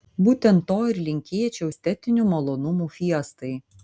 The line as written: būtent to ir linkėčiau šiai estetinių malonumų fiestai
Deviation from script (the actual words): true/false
true